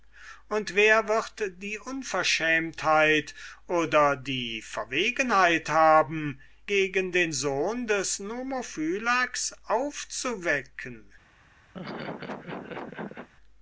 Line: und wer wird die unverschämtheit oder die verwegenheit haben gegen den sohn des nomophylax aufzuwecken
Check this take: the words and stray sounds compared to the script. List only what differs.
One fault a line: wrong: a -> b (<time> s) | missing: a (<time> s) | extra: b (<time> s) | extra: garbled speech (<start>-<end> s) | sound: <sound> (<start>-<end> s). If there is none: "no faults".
sound: laugh (11.7-13.3 s)